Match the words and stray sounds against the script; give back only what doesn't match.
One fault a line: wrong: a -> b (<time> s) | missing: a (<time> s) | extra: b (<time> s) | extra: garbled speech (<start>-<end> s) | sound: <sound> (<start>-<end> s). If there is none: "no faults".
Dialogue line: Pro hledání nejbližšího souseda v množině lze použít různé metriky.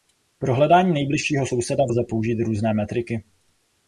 missing: množině (1.9 s)